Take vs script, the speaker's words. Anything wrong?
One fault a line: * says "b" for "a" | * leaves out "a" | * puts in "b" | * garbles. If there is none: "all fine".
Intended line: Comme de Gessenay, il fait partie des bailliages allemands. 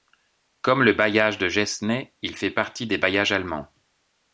* puts in "le bailliage"